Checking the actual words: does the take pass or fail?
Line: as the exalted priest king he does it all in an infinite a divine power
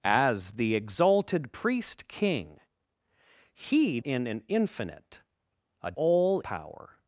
fail